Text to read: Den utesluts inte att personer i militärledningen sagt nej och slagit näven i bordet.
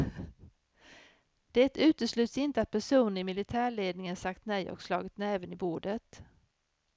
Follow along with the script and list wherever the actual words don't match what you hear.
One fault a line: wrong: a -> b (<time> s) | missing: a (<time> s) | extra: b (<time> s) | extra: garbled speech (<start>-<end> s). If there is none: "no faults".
wrong: Den -> Det (1.5 s)